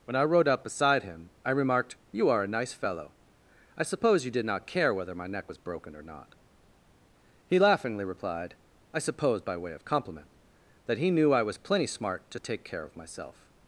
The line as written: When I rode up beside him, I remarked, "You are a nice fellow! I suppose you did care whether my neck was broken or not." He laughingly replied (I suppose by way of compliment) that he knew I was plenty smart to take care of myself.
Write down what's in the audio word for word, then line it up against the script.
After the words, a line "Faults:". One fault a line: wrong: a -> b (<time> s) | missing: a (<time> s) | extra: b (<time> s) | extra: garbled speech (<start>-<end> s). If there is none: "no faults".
When I rode up beside him, I remarked, "You are a nice fellow! I suppose you did not care whether my neck was broken or not." He laughingly replied (I suppose by way of compliment) that he knew I was plenty smart to take care of myself.
Faults:
extra: not (4.5 s)